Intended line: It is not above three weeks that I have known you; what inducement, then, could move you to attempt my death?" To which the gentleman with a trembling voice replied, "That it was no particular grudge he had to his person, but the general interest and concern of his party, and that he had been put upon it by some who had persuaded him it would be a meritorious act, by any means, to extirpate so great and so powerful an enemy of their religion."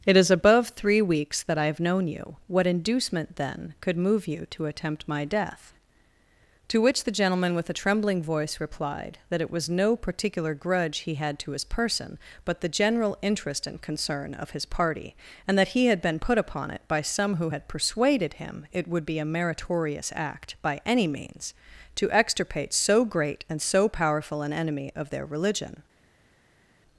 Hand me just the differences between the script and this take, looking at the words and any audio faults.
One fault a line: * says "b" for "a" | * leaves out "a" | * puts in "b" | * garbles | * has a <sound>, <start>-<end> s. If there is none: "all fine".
* leaves out "not"